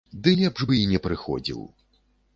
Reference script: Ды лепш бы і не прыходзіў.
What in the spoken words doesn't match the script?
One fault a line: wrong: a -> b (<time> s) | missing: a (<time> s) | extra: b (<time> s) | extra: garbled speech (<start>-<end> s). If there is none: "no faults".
no faults